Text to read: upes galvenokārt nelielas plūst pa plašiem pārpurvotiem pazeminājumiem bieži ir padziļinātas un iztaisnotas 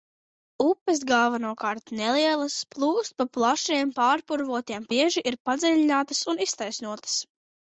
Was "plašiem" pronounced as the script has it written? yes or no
yes